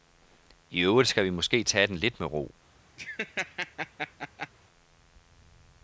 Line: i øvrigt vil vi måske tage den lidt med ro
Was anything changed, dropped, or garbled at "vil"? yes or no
yes